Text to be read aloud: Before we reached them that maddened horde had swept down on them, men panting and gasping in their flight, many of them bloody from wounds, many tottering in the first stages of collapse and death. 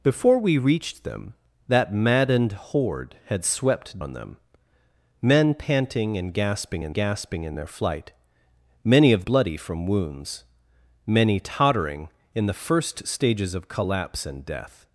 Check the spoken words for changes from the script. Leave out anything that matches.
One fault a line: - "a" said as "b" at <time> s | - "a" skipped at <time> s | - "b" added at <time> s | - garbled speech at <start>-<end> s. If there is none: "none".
- "down" skipped at 4.0 s
- "gasping in" added at 6.9 s
- "them" skipped at 9.2 s